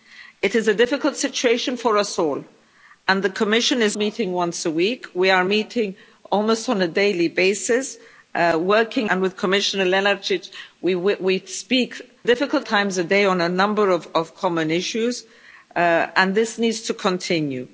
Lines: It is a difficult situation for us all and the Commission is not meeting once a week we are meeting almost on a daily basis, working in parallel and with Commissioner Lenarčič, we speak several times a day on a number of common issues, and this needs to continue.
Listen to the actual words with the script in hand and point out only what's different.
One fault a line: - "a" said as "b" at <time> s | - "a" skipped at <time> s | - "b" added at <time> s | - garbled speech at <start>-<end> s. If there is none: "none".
- "not" skipped at 4.0 s
- "in parallel" skipped at 9.1 s
- "several" said as "difficult" at 12.2 s